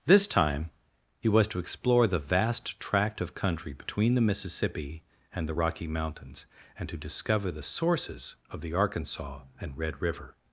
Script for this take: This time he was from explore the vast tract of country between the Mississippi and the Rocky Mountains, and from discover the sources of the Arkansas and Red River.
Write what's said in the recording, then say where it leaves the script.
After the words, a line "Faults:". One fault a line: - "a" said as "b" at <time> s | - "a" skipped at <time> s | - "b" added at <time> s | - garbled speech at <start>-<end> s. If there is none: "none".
This time he was to explore the vast tract of country between the Mississippi and the Rocky Mountains, and to discover the sources of the Arkansas and Red River.
Faults:
- "from" said as "to" at 1.5 s
- "from" said as "to" at 6.9 s